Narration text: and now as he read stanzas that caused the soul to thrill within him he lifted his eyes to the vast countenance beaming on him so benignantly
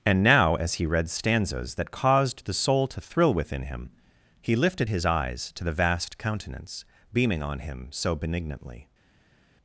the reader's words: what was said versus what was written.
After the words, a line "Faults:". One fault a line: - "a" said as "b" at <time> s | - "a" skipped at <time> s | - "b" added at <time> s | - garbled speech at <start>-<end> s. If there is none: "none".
and now as he read stanzas that caused the soul to thrill within him he lifted his eyes to the vast countenance beaming on him so benignantly
Faults:
none